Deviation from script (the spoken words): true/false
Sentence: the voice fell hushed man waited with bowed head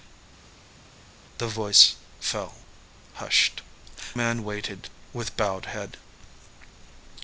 false